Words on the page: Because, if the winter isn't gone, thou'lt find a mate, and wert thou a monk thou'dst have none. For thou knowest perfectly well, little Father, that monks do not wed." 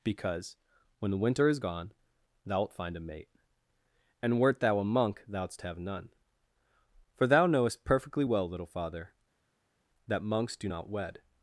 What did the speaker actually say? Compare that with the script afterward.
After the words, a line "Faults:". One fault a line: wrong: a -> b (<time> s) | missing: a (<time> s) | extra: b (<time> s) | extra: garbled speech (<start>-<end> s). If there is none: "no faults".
Because, when the winter is gone, thou'lt find a mate, and wert thou a monk thou'dst have none. For thou knowest perfectly well, little Father, that monks do not wed."
Faults:
wrong: if -> when (1.0 s)
wrong: isn't -> is (1.5 s)